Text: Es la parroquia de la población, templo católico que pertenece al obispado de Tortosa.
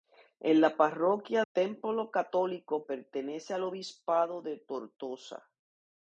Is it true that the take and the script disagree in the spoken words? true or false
true